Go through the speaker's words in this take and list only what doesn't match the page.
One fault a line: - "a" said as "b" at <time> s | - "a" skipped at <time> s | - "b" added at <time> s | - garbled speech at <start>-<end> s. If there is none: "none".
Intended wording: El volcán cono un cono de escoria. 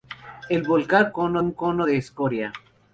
none